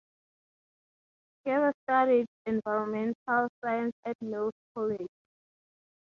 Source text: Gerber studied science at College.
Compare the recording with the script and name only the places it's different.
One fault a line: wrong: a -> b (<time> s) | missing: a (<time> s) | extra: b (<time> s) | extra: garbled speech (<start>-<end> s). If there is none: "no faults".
extra: environmental (2.5 s)
extra: Mills (4.2 s)